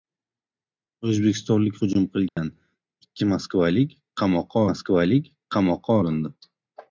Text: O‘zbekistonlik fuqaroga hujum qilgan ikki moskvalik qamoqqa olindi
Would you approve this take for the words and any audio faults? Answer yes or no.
no